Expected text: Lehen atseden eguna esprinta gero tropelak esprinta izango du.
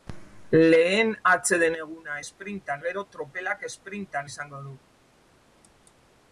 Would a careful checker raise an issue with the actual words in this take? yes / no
no